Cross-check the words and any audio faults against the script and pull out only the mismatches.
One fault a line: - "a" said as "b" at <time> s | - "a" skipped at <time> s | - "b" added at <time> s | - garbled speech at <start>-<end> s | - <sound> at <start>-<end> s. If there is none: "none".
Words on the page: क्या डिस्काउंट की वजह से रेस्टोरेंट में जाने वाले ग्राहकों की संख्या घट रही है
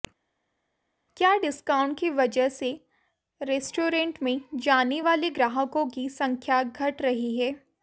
none